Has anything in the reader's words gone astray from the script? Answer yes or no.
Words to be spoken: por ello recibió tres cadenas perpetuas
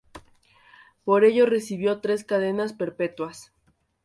no